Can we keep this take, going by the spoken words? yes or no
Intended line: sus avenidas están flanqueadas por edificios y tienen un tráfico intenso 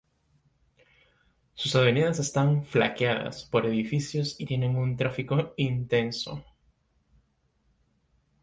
yes